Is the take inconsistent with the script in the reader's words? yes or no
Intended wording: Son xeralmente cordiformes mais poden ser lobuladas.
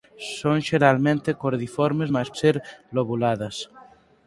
yes